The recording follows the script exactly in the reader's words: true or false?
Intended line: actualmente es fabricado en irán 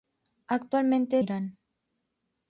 false